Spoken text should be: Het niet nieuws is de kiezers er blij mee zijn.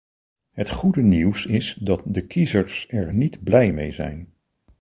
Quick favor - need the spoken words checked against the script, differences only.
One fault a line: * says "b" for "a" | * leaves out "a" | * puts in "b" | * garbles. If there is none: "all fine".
* says "goede" for "niet"
* puts in "dat"
* puts in "niet"